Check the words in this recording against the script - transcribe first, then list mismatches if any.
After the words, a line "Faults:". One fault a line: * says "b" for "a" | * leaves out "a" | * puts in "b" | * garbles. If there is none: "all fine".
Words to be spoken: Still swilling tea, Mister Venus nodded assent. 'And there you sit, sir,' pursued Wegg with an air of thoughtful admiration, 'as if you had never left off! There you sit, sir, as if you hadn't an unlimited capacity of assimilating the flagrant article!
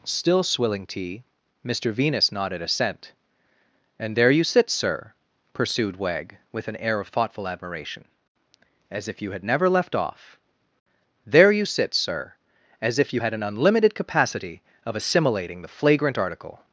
Still swilling tea, Mister Venus nodded assent. 'And there you sit, sir,' pursued Wegg with an air of thoughtful admiration, 'as if you had never left off! There you sit, sir, as if you had an unlimited capacity of assimilating the flagrant article!
Faults:
* says "had" for "hadn't"